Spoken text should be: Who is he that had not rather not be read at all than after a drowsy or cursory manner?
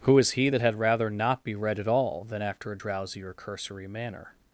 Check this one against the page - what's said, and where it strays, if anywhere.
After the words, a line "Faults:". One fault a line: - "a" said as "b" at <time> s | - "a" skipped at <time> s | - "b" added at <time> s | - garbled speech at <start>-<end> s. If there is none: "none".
Who is he that had rather not be read at all than after a drowsy or cursory manner?
Faults:
- "not" skipped at 0.8 s